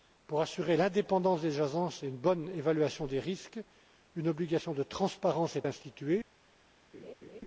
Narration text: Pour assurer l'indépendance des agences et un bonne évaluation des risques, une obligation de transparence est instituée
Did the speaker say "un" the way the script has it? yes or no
no